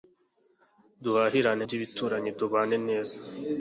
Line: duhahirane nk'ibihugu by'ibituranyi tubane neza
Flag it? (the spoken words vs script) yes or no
yes